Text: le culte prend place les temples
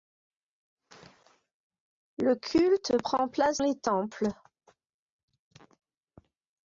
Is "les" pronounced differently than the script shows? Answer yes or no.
no